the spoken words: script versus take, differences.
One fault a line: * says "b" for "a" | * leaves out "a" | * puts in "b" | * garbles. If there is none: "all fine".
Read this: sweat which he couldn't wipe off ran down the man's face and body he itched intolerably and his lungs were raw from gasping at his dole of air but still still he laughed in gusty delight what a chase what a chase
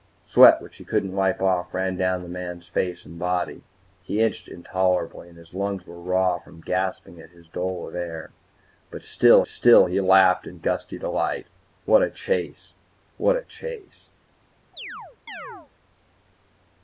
all fine